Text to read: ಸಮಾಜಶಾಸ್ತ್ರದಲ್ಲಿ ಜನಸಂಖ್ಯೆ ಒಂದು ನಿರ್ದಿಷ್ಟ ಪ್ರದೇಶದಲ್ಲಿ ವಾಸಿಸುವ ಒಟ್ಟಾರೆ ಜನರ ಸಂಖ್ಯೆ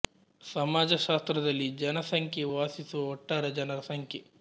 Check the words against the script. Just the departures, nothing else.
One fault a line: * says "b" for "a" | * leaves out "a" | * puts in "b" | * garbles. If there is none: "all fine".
* leaves out "ಒಂದು ನಿರ್ದಿಷ್ಟ ಪ್ರದೇಶದಲ್ಲಿ"